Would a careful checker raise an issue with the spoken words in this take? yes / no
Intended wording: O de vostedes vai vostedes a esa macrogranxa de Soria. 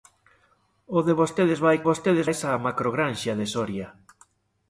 no